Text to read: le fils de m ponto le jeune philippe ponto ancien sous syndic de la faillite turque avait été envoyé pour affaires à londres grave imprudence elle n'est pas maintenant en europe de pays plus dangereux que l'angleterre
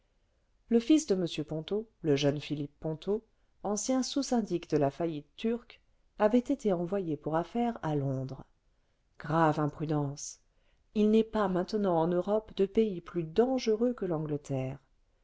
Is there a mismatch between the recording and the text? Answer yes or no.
yes